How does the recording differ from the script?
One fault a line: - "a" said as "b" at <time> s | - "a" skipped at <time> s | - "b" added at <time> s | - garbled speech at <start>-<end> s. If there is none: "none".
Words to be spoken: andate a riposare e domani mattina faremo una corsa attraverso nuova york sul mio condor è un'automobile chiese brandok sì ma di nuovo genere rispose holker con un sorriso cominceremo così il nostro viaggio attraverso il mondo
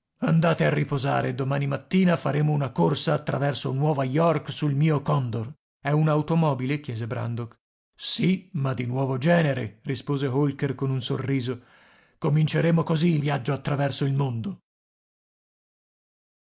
- "nostro" skipped at 13.2 s